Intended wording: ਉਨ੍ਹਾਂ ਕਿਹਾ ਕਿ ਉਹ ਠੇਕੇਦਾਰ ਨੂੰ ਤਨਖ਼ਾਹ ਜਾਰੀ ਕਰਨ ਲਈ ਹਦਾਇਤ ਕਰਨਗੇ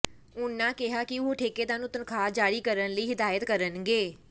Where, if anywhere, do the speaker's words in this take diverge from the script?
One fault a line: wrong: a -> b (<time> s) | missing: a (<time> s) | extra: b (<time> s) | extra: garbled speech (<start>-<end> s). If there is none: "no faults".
no faults